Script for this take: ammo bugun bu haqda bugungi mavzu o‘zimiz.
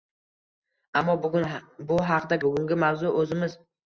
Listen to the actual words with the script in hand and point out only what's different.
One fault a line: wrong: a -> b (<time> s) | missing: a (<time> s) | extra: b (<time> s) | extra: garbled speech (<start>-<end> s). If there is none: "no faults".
no faults